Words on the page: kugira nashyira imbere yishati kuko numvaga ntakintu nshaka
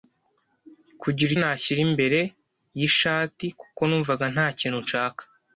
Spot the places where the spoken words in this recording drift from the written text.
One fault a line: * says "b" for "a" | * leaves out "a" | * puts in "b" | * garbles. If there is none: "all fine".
all fine